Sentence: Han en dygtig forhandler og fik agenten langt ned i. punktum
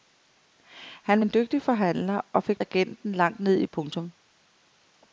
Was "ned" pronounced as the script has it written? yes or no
yes